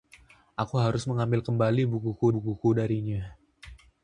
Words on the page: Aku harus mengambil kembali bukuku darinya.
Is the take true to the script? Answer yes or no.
no